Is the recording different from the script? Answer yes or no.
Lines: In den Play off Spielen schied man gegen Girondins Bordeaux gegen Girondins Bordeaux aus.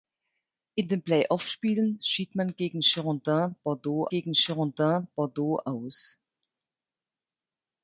no